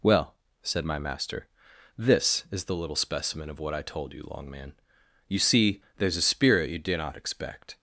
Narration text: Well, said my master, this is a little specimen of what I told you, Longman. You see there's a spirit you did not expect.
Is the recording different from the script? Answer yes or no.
yes